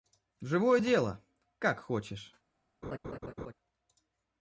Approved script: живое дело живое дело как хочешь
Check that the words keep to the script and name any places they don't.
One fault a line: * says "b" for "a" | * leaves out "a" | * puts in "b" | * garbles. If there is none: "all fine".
* leaves out "живое дело"